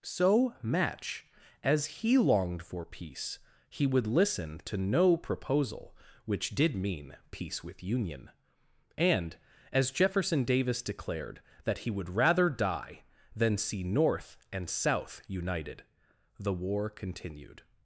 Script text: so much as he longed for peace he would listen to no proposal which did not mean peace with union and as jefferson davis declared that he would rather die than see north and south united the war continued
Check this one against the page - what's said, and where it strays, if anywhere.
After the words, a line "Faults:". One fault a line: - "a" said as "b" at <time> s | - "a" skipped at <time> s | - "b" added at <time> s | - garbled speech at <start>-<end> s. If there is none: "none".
so match as he longed for peace he would listen to no proposal which did mean peace with union and as jefferson davis declared that he would rather die than see north and south united the war continued
Faults:
- "much" said as "match" at 0.6 s
- "not" skipped at 6.8 s